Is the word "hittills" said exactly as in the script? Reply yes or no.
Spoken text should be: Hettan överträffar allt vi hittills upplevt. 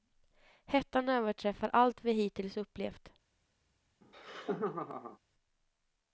yes